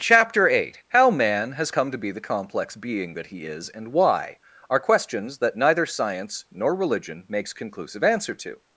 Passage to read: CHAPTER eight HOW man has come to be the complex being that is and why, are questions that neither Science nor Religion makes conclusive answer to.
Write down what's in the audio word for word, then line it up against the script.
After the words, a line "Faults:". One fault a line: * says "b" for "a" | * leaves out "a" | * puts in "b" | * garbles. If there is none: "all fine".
CHAPTER eight HOW man has come to be the complex being that he is and why, are questions that neither Science nor Religion makes conclusive answer to.
Faults:
* puts in "he"